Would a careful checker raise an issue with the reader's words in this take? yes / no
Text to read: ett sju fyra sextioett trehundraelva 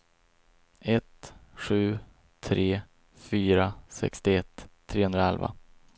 yes